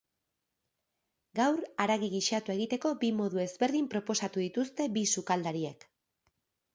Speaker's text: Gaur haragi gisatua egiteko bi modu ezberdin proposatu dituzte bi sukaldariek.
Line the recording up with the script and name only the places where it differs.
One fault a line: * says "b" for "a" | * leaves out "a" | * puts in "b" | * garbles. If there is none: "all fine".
all fine